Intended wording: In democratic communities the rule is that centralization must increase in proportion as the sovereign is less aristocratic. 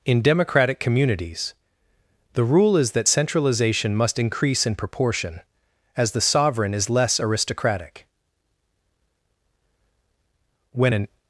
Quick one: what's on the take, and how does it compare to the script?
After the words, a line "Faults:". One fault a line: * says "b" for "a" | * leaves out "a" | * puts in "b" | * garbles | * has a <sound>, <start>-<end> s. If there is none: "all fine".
In democratic communities the rule is that centralization must increase in proportion as the sovereign is less aristocratic. When an
Faults:
* puts in "When an"